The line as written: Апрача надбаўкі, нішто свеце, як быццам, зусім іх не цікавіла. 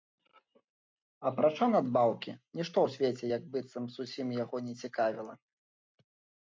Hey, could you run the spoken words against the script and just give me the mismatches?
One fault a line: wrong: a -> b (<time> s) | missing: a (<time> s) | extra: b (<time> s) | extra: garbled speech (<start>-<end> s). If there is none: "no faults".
extra: ў (2.8 s)
wrong: іх -> яго (4.4 s)